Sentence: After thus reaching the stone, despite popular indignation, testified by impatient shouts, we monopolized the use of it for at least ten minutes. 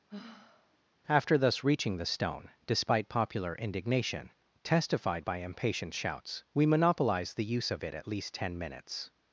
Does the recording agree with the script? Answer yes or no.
no